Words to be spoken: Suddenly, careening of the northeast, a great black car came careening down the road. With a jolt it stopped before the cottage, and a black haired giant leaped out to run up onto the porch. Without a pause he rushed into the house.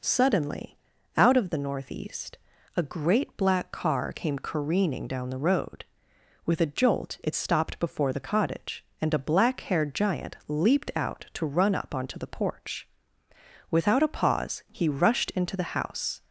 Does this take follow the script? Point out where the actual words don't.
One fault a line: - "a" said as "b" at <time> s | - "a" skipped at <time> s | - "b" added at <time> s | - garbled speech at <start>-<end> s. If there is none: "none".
- "careening" said as "out" at 1.1 s